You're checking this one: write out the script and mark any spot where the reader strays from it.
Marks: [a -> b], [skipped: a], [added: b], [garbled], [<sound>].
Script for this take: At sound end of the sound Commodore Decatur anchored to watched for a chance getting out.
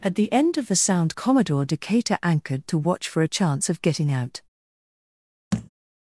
At [sound -> the] end of the sound Commodore Decatur anchored to [watched -> watch] for a chance [added: of] getting out. [thud]